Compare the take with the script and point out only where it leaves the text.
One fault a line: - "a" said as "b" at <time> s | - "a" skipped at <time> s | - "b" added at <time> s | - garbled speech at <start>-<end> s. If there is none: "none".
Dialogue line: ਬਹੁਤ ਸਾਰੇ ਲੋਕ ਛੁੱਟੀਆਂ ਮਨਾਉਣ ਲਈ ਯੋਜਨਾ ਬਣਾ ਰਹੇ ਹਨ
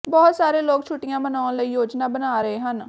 none